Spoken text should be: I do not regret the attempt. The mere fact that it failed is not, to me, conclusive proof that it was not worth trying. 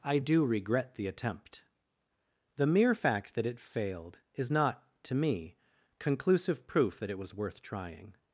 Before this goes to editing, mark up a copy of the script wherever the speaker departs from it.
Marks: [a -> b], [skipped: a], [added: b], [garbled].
I do [skipped: not] regret the attempt. The mere fact that it failed is not, to me, conclusive proof that it was [skipped: not] worth trying.